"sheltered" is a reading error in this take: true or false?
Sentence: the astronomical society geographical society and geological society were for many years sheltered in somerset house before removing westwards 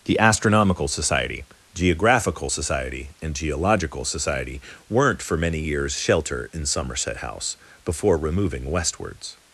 true